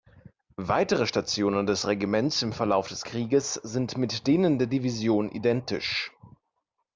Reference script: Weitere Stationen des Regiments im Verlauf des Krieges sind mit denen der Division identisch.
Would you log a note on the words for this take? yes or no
no